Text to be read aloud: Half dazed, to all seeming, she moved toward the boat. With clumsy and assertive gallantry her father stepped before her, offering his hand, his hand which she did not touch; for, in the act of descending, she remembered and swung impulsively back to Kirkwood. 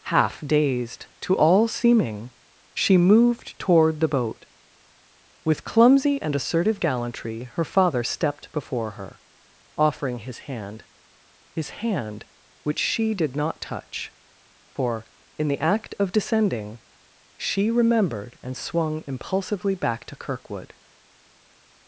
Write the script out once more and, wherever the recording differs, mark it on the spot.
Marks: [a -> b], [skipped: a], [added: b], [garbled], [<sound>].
Half dazed, to all seeming, she moved toward the boat. With clumsy and assertive gallantry her father stepped before her, offering his hand, his hand which she did not touch; for, in the act of descending, she remembered and swung impulsively back to Kirkwood.